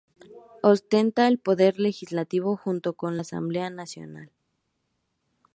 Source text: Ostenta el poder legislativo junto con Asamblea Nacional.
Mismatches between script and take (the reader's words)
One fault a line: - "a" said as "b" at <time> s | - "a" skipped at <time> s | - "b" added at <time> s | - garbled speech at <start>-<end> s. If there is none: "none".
none